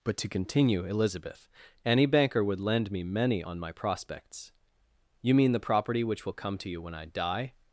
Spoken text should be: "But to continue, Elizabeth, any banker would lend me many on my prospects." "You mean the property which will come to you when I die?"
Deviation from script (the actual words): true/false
false